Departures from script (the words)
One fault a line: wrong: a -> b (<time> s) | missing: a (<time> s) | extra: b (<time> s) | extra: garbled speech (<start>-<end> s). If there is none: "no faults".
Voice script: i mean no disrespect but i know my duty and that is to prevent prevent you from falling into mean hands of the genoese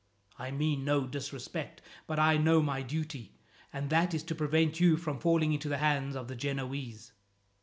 missing: prevent (4.8 s)
wrong: mean -> the (5.7 s)